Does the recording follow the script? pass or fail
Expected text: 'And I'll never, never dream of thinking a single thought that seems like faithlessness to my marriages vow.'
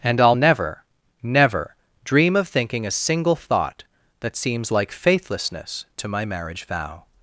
fail